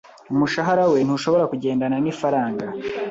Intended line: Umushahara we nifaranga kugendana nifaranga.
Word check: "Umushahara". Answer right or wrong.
right